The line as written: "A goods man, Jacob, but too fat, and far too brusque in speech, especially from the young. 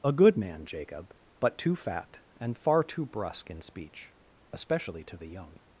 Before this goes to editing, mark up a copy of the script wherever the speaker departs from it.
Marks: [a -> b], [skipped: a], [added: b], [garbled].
"A [goods -> good] man, Jacob, but too fat, and far too brusque in speech, especially [from -> to] the young.